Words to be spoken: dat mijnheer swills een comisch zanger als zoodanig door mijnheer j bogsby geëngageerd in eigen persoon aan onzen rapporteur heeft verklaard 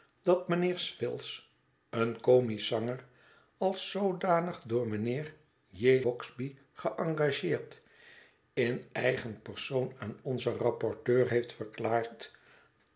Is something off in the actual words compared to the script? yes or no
no